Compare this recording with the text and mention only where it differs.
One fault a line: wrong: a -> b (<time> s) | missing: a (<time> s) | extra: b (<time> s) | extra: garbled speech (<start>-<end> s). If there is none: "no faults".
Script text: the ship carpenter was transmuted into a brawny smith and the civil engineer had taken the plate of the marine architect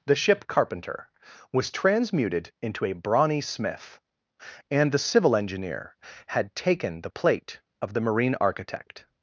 no faults